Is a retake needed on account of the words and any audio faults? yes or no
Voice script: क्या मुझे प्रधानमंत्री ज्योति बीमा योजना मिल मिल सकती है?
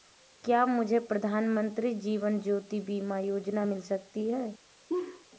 yes